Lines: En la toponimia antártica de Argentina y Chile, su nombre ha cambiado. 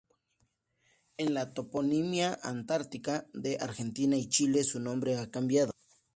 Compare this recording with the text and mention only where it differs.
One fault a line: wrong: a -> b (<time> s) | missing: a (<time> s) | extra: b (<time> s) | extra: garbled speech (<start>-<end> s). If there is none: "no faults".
no faults